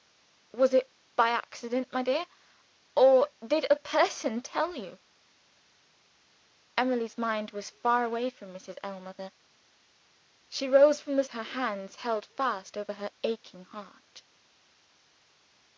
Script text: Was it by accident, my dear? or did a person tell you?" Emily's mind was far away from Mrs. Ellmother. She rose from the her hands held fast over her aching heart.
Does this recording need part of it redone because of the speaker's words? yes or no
no